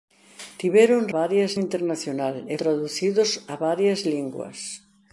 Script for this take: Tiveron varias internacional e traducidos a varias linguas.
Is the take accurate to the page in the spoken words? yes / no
yes